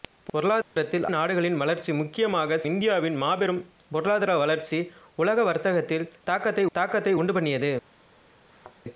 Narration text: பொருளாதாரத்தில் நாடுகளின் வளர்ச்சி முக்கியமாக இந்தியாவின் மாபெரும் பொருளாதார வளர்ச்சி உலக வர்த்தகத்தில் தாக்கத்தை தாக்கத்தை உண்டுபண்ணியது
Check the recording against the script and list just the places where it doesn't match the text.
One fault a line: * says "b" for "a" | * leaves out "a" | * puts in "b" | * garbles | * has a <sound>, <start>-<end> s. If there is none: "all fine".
* has a dropout, 0.6-0.8 s
* has a thud, 8.4-8.8 s